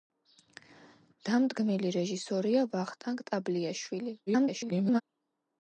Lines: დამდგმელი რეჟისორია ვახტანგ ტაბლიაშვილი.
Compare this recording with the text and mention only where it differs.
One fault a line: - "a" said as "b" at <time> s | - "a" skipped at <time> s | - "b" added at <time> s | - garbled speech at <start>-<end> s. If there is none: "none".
- garbled speech at 4.3-5.0 s